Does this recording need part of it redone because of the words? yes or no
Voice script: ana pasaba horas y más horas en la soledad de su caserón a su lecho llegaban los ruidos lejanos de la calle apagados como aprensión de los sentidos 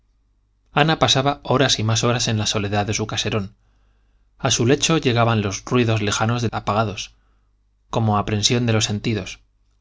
yes